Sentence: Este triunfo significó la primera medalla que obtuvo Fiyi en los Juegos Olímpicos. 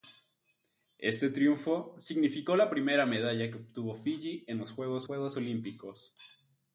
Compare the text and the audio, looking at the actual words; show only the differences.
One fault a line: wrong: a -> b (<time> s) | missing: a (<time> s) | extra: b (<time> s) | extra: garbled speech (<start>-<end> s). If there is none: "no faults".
extra: Juegos (5.0 s)